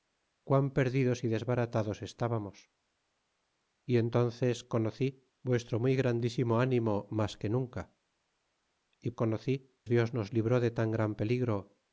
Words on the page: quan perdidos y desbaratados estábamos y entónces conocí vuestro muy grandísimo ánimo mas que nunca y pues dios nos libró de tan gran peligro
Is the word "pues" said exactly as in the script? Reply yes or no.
no